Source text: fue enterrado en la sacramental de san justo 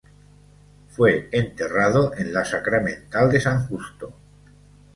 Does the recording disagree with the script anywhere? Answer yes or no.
no